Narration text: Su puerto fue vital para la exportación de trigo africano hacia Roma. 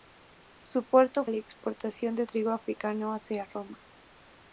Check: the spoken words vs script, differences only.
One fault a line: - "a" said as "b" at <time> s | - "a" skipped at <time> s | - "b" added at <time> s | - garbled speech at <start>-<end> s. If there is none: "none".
- "fue vital para" skipped at 1.2 s